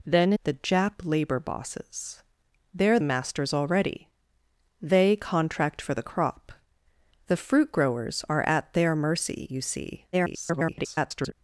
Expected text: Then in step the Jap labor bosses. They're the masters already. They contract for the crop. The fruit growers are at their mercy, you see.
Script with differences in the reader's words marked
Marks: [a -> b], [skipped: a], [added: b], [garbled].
Then [skipped: in step] the Jap labor bosses. They're [skipped: the] masters already. They contract for the crop. The fruit growers are at their mercy, you see. [garbled]